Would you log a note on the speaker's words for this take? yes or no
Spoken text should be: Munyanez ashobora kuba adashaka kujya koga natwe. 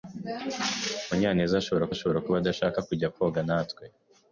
yes